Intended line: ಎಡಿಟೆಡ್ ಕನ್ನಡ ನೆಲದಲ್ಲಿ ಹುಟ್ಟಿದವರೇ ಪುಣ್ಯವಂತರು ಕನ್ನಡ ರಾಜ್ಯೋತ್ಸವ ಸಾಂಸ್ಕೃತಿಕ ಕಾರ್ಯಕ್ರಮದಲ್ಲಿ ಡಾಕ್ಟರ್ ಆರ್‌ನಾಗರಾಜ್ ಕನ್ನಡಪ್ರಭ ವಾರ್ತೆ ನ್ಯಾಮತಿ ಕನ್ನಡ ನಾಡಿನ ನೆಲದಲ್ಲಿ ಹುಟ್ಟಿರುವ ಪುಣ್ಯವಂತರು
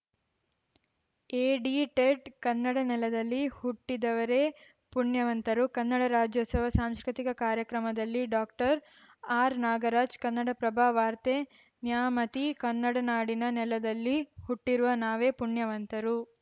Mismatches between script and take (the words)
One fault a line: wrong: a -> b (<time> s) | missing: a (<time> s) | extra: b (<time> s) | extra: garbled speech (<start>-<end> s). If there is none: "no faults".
extra: ನಾವೇ (15.1 s)